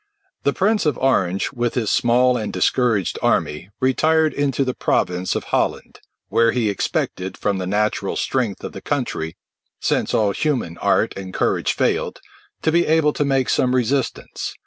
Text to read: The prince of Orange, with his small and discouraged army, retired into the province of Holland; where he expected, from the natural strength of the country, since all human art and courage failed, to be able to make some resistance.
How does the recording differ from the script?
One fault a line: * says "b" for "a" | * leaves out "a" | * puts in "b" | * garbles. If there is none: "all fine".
all fine